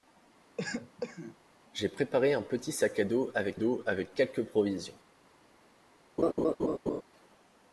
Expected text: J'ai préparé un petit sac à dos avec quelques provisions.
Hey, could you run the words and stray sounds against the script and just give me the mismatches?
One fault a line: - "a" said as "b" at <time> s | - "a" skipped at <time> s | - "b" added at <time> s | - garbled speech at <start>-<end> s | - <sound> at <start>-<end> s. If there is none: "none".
- cough at 0.6-1.4 s
- "dos avec" added at 3.5 s
- laugh at 6.2-7.0 s